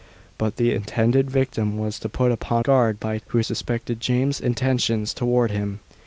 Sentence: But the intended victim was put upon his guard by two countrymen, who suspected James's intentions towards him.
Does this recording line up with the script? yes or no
no